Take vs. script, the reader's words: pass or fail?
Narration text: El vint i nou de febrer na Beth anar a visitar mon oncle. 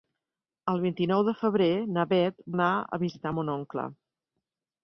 pass